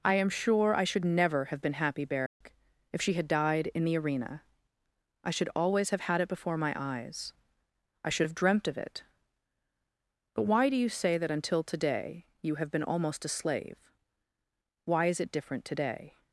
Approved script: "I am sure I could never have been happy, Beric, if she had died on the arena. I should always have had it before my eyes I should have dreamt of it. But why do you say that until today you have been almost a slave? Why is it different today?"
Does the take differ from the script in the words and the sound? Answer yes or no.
yes